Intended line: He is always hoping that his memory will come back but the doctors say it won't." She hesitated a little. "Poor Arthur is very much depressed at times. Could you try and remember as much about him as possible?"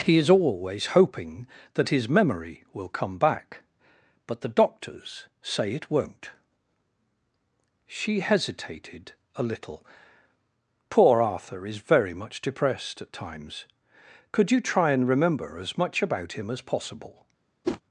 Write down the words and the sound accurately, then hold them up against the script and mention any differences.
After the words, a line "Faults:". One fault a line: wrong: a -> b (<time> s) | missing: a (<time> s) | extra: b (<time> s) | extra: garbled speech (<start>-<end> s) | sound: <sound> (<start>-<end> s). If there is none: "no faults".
He is always hoping that his memory will come back but the doctors say it won't." She hesitated a little. "Poor Arthur is very much depressed at times. Could you try and remember as much about him as possible?"
Faults:
sound: whoosh (17.6-17.8 s)